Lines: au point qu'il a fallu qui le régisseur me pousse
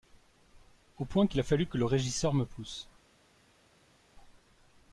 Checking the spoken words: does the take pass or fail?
fail